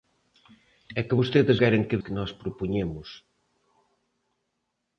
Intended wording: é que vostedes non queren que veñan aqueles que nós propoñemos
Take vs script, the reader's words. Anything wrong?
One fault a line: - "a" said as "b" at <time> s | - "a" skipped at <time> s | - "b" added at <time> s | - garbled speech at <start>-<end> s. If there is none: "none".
- "non" skipped at 1.6 s
- "veñan aqueles" skipped at 2.0 s